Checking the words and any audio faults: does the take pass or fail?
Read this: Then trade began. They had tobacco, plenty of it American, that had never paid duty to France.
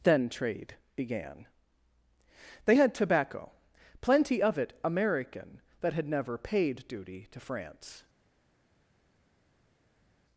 pass